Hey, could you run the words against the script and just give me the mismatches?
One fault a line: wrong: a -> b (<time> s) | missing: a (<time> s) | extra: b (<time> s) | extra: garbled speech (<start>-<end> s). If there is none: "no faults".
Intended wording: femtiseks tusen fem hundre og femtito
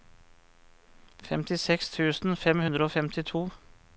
no faults